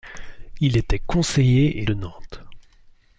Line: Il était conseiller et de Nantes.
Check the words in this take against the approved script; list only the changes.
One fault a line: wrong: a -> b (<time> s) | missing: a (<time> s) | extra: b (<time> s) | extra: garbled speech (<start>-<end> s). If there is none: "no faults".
no faults